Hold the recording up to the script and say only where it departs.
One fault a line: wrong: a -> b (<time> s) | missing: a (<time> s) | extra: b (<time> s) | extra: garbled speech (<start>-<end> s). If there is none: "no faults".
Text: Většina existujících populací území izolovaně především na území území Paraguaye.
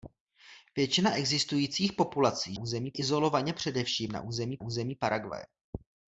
no faults